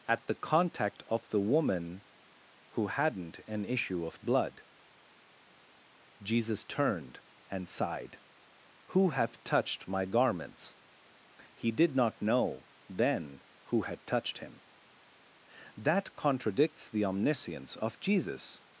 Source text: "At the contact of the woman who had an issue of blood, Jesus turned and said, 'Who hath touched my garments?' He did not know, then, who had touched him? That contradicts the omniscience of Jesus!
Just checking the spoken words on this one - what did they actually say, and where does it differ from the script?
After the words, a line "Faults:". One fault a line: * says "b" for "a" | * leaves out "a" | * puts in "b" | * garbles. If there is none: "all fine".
"At the contact of the woman who hadn't an issue of blood, Jesus turned and sighed, 'Who hath touched my garments?' He did not know, then, who had touched him? That contradicts the omniscience of Jesus!
Faults:
* says "hadn't" for "had"
* says "sighed" for "said"